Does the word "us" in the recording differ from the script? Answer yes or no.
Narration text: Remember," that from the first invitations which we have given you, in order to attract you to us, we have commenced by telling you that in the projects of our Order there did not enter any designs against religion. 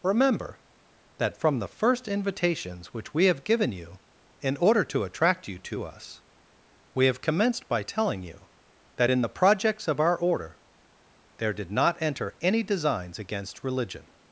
no